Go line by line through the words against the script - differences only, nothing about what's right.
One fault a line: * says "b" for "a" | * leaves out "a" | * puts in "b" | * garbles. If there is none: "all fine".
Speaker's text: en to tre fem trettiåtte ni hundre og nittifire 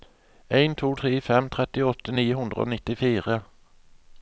all fine